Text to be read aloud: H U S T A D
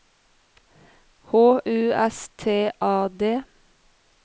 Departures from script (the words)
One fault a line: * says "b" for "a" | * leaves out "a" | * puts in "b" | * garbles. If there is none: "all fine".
all fine